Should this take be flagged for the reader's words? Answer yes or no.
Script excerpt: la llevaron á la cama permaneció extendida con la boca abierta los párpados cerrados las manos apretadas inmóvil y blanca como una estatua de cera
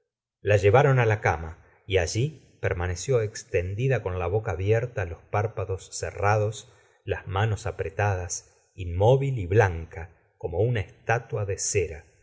yes